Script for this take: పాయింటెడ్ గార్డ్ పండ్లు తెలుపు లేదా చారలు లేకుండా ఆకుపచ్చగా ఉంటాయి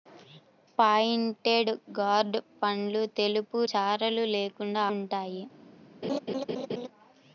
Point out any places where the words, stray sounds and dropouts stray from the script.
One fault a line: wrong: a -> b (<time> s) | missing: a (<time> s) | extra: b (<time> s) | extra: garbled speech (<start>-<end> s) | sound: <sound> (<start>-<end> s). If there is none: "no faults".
missing: లేదా (3.6 s)
missing: ఆకుపచ్చగా (4.8 s)
sound: laugh (6.0-6.9 s)